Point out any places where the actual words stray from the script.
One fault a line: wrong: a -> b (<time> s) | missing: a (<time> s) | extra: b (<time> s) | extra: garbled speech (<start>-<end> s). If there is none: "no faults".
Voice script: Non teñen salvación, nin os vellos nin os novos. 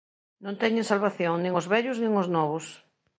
no faults